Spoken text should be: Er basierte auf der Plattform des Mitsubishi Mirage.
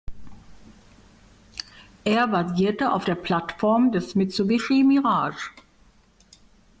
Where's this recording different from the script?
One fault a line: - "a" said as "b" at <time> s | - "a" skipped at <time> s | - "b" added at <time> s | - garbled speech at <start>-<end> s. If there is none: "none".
none